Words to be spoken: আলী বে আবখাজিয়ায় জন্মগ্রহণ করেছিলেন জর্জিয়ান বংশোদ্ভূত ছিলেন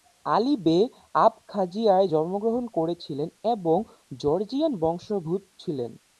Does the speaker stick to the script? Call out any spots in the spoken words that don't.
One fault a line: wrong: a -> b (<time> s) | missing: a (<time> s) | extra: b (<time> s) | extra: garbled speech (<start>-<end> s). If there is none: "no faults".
extra: এবং (3.5 s)